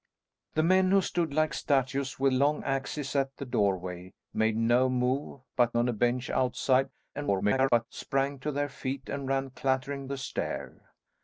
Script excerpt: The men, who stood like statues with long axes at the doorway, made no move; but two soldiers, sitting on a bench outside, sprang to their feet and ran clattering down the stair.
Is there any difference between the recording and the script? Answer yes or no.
yes